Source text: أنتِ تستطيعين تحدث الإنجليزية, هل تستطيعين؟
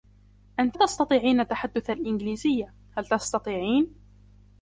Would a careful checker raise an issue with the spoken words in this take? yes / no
no